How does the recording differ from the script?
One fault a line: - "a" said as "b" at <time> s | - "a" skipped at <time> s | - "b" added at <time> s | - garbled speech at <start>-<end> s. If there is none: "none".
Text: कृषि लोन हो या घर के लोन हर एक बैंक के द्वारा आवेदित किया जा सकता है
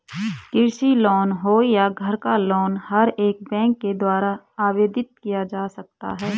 - "के" said as "का" at 2.2 s